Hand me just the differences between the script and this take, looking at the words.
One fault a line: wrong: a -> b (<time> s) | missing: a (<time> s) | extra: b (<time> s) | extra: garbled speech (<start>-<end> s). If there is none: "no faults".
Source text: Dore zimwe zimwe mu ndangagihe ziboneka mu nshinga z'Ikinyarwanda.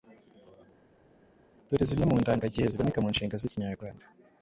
missing: zimwe (2.0 s)